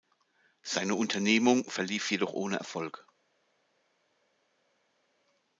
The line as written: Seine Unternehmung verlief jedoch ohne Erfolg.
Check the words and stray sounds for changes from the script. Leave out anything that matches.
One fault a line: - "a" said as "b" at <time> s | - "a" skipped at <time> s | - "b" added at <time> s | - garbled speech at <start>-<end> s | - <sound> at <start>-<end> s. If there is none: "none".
none